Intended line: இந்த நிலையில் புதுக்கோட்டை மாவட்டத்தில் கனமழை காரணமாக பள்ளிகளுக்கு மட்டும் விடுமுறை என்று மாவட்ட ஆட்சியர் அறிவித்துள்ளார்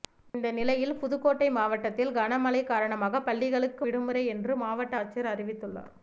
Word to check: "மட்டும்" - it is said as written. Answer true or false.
false